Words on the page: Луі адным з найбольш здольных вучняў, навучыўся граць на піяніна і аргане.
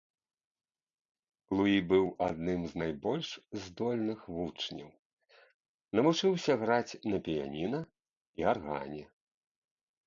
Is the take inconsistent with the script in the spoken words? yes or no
yes